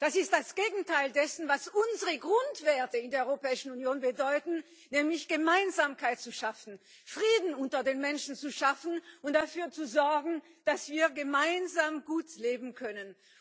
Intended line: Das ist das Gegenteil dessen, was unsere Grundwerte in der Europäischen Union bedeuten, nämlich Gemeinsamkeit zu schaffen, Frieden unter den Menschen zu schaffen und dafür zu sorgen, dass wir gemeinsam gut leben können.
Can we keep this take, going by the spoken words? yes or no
yes